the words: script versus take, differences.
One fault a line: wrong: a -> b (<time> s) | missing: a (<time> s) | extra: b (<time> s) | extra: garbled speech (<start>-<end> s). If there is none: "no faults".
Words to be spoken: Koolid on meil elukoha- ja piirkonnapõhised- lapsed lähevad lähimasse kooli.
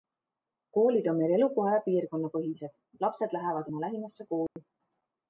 extra: oma (3.7 s)